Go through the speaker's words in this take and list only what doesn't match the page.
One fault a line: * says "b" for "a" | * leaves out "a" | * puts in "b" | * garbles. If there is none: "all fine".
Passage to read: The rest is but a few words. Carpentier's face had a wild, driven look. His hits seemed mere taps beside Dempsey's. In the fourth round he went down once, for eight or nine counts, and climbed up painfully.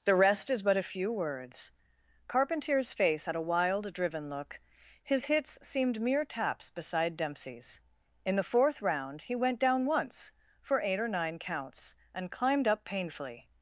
all fine